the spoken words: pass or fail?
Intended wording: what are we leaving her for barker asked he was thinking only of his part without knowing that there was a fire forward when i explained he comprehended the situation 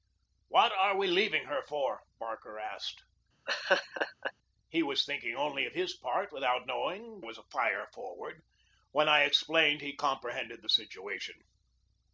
fail